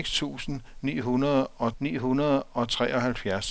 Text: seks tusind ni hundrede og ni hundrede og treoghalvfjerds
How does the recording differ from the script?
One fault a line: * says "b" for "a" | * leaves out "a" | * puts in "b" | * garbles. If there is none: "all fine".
all fine